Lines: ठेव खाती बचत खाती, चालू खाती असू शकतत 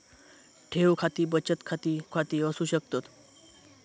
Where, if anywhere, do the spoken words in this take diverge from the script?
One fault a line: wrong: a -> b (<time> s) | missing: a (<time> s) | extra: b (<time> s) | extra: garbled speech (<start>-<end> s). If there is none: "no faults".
missing: चालू (2.0 s)